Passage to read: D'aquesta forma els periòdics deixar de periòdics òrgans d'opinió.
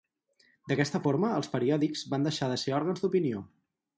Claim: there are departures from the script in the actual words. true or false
true